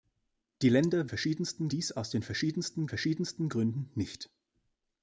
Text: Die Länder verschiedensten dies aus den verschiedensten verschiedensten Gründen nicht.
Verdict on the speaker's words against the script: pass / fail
pass